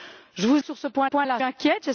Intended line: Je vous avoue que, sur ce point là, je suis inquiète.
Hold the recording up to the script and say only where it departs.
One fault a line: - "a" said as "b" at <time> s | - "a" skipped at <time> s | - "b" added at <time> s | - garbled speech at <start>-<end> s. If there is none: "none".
- "avoue" skipped at 0.6 s
- "point" added at 1.0 s
- "suis" skipped at 1.4 s